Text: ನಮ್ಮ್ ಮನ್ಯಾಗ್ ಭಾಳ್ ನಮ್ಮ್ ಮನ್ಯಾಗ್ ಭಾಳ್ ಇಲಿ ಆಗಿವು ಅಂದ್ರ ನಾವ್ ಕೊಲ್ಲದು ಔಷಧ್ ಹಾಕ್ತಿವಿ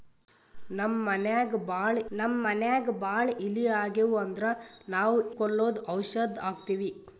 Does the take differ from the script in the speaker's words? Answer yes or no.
no